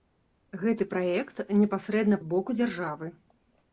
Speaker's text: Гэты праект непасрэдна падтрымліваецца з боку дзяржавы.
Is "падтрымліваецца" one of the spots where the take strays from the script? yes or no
yes